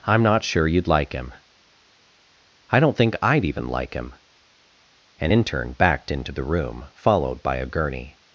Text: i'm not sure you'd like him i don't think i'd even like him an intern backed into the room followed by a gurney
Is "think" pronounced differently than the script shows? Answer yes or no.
no